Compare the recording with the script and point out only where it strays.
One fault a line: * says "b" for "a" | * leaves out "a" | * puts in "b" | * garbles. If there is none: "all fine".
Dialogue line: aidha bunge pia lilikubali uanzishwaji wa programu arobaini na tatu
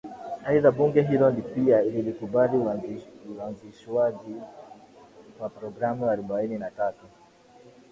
* puts in "hilo"